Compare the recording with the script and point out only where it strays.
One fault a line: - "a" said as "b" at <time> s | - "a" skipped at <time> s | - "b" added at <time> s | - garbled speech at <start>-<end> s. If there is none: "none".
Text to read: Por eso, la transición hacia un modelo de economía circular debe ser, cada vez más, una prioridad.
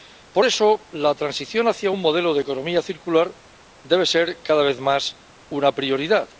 none